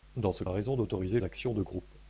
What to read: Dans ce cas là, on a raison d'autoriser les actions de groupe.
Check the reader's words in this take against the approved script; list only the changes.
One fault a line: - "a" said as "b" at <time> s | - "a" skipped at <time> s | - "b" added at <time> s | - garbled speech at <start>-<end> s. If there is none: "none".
- "cas là on" skipped at 0.4 s
- "les" skipped at 1.2 s